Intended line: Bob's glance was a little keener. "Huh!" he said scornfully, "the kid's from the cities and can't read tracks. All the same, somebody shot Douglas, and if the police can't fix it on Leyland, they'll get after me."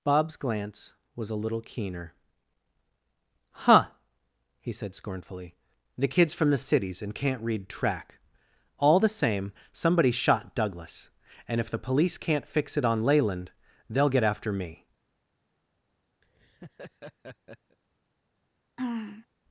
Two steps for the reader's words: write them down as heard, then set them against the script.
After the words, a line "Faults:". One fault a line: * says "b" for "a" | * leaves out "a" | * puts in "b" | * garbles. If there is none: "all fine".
Bob's glance was a little keener. "Huh!" he said scornfully, "the kid's from the cities and can't read track. All the same, somebody shot Douglas, and if the police can't fix it on Leyland, they'll get after me."
Faults:
* says "track" for "tracks"